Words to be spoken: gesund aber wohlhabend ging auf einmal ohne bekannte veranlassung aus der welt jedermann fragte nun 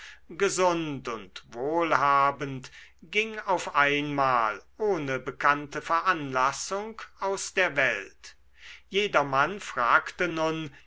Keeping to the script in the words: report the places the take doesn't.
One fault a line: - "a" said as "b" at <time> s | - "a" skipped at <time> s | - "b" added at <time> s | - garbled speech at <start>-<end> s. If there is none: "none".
- "aber" said as "und" at 1.1 s